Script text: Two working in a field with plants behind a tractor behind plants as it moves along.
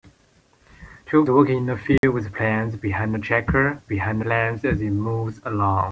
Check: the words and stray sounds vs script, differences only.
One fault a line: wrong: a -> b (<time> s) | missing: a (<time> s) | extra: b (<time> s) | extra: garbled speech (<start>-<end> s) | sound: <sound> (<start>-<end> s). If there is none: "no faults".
sound: dropout (2.0-2.0 s)